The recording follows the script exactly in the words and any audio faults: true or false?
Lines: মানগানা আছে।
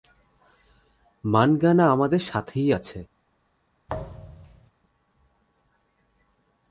false